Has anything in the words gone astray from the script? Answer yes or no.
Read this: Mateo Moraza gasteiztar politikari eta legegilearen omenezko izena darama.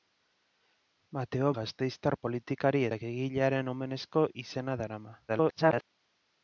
yes